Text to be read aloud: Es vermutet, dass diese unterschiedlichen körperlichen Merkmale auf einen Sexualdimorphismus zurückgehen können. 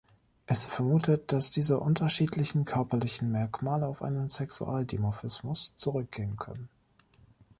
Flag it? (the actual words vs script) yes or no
no